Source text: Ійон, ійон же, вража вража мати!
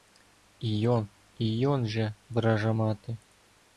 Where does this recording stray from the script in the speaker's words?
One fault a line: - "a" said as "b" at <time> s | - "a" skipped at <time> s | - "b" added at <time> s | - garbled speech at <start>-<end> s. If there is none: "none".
- "вража" skipped at 2.7 s